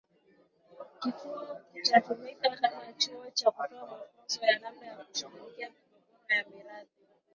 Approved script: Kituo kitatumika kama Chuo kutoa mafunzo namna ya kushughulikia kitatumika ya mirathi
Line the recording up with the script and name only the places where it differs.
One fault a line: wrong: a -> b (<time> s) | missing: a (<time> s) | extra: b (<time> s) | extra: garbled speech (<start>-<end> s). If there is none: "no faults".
extra: cha (3.3 s)
extra: ya (4.5 s)
wrong: kitatumika -> migogoro (5.7 s)